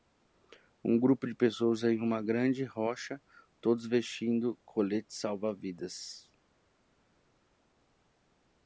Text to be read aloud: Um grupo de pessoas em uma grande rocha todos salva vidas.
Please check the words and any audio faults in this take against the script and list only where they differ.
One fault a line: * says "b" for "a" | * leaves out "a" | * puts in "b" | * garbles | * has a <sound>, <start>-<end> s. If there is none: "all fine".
* puts in "vestindo coletes"